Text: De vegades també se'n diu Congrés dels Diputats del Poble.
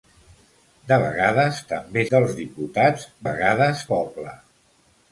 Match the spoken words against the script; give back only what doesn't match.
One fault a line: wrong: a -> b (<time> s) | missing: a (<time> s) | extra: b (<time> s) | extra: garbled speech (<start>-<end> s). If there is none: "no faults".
missing: se'n diu Congrés (2.0 s)
wrong: del -> vegades (3.3 s)